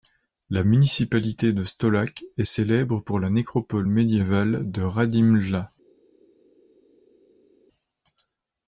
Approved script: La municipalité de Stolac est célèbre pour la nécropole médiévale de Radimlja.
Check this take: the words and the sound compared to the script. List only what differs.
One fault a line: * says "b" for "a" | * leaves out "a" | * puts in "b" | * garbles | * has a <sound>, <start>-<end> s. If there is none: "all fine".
all fine